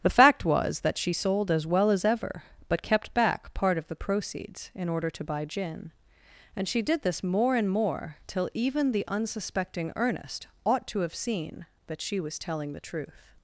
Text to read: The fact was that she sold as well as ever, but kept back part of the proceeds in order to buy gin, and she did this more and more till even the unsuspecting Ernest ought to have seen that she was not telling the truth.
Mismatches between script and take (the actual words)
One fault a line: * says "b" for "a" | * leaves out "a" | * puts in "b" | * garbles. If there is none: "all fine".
* leaves out "not"